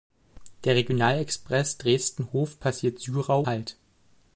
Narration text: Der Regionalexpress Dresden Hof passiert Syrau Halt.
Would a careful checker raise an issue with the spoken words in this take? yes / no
no